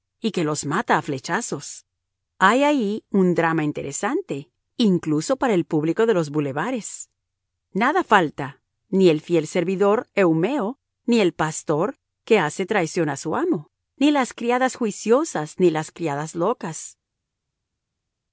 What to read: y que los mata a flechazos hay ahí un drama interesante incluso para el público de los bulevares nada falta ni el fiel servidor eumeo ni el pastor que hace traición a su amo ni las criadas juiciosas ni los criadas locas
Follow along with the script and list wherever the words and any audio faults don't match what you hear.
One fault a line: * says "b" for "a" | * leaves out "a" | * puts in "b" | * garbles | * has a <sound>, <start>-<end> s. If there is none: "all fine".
* says "las" for "los"